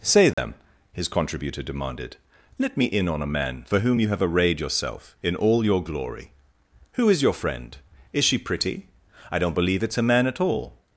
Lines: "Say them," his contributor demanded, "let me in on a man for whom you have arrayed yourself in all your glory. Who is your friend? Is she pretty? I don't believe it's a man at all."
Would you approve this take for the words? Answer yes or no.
yes